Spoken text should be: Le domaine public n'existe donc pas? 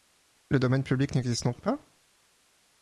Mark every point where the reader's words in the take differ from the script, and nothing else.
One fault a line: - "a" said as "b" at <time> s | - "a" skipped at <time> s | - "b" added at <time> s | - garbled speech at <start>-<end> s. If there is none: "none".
none